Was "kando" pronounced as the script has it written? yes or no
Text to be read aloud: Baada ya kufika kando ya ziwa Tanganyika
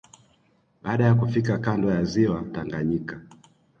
yes